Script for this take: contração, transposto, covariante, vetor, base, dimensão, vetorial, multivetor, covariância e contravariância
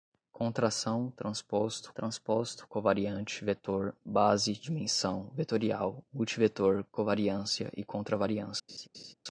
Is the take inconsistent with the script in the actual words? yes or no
yes